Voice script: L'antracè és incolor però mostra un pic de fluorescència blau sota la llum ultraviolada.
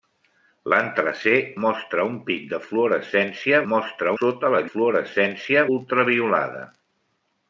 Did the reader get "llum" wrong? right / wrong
wrong